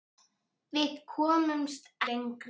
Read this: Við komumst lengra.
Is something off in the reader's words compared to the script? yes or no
no